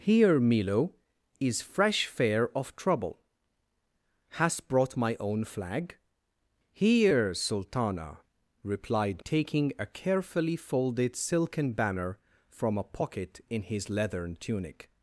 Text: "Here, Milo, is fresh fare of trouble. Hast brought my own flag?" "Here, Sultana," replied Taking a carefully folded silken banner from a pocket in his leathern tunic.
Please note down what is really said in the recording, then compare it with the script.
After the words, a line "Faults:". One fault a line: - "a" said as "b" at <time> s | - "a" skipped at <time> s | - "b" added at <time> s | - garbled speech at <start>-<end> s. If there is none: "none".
"Here, Milo, is fresh fare of trouble. Hast brought my own flag?" "Here, Sultana," replied Taking a carefully folded silken banner from a pocket in his leathern tunic.
Faults:
none